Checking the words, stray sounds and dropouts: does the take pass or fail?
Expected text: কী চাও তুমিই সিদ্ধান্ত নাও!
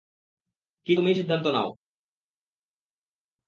fail